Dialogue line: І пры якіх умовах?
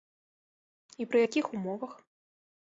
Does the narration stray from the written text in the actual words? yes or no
no